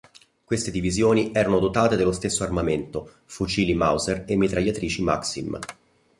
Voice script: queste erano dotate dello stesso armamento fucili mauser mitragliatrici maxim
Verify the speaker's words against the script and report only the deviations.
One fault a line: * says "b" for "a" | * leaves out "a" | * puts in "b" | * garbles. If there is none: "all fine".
* puts in "divisioni"
* puts in "e"